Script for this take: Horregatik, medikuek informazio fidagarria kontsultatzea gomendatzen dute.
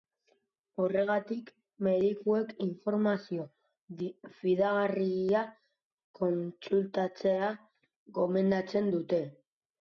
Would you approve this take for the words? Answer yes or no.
yes